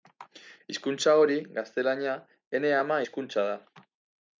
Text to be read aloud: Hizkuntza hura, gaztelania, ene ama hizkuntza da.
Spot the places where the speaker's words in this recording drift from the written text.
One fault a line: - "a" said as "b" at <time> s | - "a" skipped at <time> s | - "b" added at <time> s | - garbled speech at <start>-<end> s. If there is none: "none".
- "hura" said as "hori" at 1.2 s